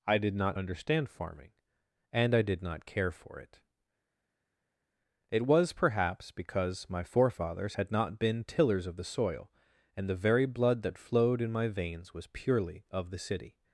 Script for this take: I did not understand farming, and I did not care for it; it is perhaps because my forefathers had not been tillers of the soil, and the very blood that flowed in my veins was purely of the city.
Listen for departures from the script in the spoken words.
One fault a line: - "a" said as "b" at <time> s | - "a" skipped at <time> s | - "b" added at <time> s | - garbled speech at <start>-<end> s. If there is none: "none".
- "is" said as "was" at 5.5 s